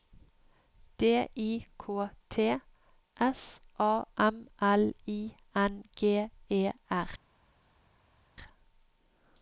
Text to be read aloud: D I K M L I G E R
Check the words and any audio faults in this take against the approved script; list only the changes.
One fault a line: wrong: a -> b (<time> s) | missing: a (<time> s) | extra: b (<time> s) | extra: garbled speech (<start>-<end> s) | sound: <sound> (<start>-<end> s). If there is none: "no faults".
extra: T S A (2.3 s)
extra: N (5.5 s)